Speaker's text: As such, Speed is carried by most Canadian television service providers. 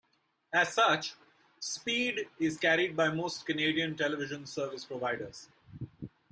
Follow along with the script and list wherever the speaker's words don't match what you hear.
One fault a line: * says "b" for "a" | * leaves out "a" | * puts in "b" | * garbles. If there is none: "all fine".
all fine